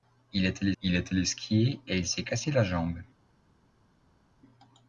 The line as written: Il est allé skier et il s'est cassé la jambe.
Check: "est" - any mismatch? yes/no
no